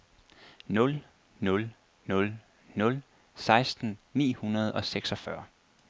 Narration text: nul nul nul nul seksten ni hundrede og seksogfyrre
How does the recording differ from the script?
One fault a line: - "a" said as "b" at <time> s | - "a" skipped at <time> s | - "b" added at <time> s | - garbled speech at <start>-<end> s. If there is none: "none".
none